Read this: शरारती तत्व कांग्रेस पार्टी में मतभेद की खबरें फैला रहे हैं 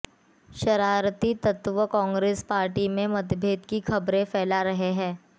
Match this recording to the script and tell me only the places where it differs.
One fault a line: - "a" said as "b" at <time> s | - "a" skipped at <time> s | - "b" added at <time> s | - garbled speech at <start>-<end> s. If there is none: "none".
none